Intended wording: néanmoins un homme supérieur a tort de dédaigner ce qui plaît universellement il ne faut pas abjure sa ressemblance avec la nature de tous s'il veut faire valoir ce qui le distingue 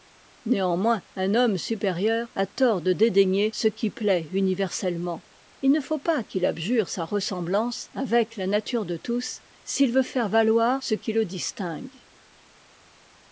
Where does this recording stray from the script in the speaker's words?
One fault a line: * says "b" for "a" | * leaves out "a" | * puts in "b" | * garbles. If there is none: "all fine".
* puts in "qu'il"